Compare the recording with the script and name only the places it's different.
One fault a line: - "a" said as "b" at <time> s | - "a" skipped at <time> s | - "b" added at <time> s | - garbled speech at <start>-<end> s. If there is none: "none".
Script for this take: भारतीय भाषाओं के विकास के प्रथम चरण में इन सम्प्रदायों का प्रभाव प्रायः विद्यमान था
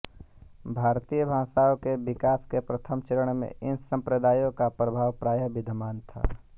none